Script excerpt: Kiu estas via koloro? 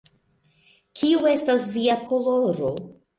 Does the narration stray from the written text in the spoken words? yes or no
no